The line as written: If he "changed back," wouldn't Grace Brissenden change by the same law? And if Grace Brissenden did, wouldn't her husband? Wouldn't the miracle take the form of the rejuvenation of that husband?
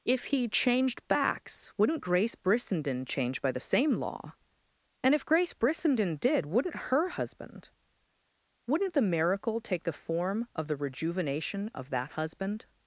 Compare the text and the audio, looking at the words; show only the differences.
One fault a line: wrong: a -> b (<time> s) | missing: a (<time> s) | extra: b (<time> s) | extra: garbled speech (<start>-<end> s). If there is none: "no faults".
wrong: back -> backs (1.1 s)